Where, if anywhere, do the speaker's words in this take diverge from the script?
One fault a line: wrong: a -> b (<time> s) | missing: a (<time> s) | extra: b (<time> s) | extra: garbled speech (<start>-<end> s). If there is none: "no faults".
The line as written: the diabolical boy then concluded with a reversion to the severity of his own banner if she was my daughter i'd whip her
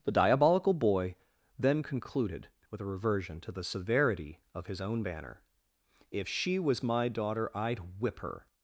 no faults